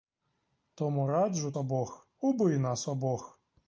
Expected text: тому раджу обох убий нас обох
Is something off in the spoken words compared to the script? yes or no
no